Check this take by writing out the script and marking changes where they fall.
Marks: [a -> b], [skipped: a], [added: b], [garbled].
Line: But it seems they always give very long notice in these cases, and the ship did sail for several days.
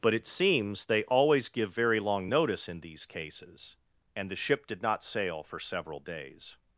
But it seems they always give very long notice in these cases, and the ship did [added: not] sail for several days.